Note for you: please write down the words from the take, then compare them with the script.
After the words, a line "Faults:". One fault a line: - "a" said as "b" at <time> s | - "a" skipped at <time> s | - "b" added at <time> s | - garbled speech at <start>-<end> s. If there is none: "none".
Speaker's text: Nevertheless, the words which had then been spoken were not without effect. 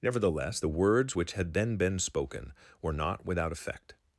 Nevertheless, the words which had then been spoken were not without effect.
Faults:
none